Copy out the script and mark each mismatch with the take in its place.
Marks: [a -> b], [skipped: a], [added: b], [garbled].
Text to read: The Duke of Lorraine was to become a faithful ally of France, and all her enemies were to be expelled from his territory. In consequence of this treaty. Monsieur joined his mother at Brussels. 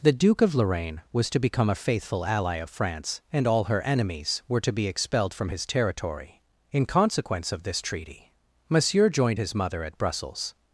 The Duke of Lorraine was to become a faithful ally of France, and all her enemies were to be expelled from his territory. In consequence of this treaty. Monsieur joined his mother at Brussels.